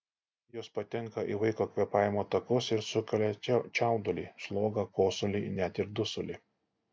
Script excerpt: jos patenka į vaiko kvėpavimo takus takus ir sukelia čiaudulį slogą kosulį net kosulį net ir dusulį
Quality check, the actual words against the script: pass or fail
fail